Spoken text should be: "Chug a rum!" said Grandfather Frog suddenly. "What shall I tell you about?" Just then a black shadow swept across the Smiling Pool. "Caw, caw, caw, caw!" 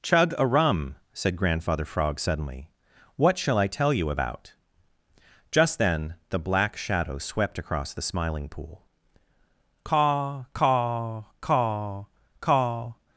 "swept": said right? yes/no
yes